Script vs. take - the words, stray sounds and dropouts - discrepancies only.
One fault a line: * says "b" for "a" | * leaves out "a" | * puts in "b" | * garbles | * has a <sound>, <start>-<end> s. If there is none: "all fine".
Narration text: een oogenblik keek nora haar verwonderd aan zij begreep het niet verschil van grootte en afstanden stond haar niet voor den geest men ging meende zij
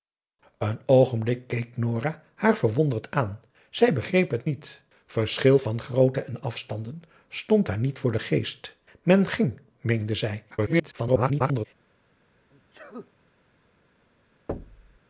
* garbles
* has a sneeze, 12.5-13.1 s
* has a thud, 14.5-15.0 s